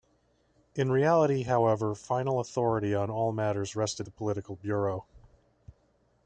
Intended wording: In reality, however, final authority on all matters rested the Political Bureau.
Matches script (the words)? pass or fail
pass